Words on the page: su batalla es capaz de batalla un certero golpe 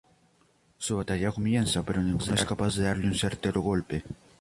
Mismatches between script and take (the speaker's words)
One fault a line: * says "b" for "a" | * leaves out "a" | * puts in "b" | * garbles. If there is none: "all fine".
* puts in "comienza pero ninguno"
* says "darle" for "batalla"